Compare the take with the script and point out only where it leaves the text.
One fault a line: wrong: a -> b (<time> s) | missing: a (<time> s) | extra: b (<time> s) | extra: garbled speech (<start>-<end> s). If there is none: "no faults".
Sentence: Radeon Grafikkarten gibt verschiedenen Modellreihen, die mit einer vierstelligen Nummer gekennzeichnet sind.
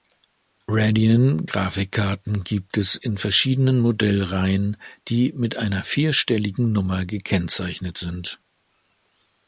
extra: es in (2.8 s)